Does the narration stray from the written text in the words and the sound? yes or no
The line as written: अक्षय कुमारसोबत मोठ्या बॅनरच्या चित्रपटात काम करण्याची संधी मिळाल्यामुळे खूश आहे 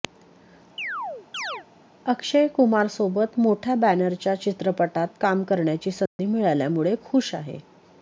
yes